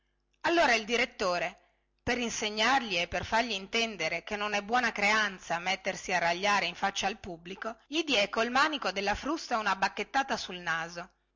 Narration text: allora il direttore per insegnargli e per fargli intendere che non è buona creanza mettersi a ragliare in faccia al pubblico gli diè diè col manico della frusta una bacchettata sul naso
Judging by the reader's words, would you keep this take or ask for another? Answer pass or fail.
fail